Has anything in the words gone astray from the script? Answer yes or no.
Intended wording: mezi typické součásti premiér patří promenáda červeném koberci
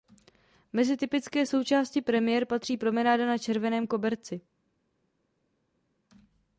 yes